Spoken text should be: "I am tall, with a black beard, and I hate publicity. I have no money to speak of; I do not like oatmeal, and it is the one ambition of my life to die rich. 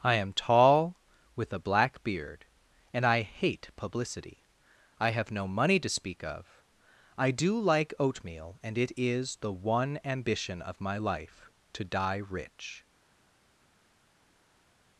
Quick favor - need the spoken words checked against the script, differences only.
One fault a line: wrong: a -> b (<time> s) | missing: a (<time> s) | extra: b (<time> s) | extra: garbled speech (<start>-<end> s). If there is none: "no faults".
missing: not (7.6 s)